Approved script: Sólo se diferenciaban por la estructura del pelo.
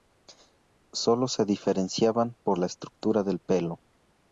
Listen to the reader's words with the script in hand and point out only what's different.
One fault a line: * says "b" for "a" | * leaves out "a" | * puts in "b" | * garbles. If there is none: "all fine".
all fine